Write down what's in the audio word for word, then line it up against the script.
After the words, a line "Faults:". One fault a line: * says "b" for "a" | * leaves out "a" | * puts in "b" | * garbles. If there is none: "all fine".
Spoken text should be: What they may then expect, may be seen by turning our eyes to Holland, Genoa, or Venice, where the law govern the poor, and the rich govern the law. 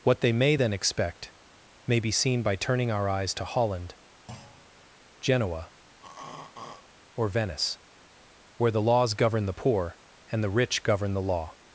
What they may then expect, may be seen by turning our eyes to Holland, Genoa, or Venice, where the laws govern the poor, and the rich govern the law.
Faults:
* says "laws" for "law"